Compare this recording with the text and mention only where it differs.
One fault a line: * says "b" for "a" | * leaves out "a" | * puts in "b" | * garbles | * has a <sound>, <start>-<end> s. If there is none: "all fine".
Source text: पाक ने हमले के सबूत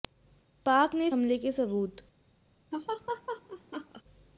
* has a laugh, 2.7-4.0 s